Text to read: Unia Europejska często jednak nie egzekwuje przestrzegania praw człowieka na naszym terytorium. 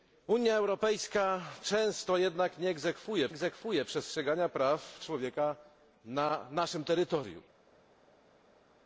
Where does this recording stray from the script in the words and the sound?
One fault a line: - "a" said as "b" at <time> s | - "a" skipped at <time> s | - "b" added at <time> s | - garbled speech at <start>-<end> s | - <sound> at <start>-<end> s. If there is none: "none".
- "egzekwuje" added at 3.3 s